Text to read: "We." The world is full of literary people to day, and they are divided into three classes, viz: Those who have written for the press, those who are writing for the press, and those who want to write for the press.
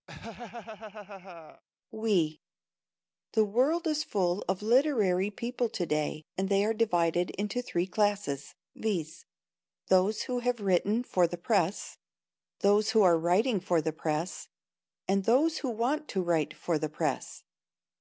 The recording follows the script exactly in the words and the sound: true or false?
false